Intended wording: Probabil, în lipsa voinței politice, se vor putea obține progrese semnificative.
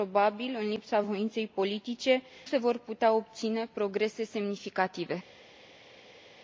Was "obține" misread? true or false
false